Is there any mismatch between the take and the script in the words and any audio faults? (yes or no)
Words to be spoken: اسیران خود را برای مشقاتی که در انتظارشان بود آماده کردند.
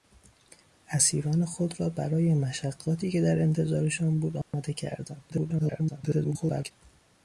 yes